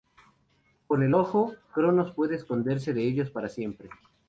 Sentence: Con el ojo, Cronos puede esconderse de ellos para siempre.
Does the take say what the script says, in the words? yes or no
yes